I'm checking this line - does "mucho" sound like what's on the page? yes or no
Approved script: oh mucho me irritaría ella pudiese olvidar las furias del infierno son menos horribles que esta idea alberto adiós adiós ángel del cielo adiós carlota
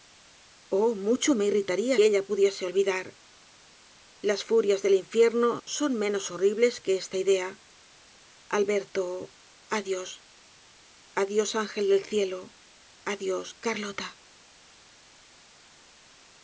yes